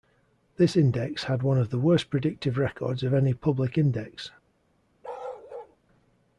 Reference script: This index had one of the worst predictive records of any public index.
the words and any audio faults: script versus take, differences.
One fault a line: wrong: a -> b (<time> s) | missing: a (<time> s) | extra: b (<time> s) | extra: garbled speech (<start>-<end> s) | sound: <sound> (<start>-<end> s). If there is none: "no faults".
sound: bark (5.0-5.8 s)